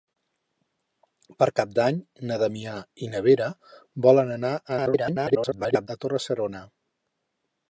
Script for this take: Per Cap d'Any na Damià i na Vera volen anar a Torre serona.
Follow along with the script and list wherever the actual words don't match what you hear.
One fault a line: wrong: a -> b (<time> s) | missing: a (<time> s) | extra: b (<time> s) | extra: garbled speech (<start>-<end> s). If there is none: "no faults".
extra: garbled speech (4.7-5.9 s)